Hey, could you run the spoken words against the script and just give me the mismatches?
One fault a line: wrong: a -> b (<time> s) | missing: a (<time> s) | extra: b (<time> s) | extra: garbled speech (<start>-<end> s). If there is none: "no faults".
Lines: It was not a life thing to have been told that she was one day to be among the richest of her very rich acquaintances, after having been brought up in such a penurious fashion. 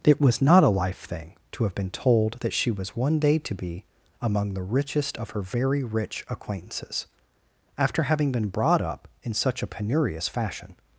no faults